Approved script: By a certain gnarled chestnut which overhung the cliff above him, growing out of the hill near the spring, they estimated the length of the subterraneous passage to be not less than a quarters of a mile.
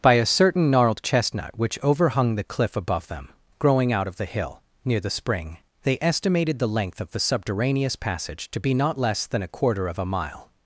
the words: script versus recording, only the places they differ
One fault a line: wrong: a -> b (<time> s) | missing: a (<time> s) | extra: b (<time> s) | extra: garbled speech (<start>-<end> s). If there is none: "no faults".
wrong: him -> them (3.1 s)
wrong: quarters -> quarter (9.5 s)